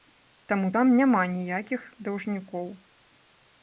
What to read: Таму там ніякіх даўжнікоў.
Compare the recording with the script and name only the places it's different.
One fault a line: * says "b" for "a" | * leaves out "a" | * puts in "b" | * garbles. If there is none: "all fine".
* puts in "няма"